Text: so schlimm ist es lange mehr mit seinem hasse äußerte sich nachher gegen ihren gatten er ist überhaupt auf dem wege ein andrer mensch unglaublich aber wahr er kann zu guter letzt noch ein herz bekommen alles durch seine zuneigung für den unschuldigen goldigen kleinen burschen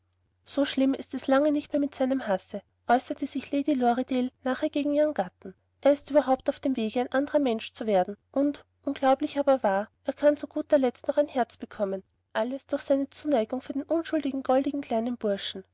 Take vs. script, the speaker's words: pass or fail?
fail